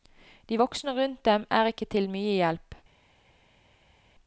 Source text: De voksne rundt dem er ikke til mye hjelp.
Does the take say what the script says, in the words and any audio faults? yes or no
yes